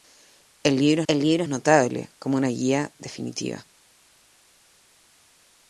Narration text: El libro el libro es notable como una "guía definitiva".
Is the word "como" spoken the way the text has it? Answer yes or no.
yes